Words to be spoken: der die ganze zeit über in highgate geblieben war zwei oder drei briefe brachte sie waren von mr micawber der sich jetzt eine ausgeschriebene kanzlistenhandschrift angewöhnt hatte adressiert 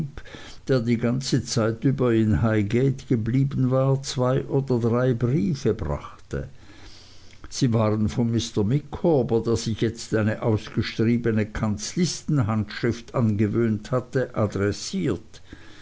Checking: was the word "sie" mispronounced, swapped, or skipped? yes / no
no